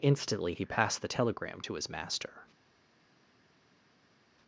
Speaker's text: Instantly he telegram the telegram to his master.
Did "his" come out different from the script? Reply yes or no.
no